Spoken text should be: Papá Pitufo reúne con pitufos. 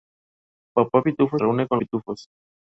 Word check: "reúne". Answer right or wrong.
right